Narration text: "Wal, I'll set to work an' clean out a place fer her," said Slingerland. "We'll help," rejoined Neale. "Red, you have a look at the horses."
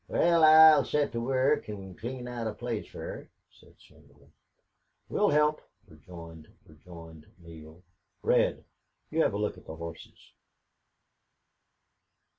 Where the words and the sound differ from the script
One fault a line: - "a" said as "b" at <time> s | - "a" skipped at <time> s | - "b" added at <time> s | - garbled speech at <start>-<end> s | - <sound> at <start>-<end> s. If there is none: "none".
- "rejoined" added at 6.7 s